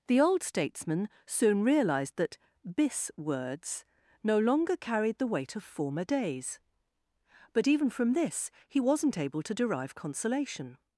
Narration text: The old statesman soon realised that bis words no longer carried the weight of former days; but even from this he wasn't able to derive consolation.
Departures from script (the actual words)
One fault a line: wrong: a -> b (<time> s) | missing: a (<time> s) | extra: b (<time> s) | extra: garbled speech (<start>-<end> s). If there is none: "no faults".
no faults